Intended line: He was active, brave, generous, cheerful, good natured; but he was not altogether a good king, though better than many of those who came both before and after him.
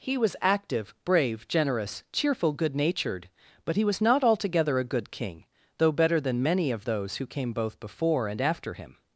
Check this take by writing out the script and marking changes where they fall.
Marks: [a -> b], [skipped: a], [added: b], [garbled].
He was active, brave, generous, cheerful, good natured; but he was not altogether a good king, though better than many of those who came both before and after him.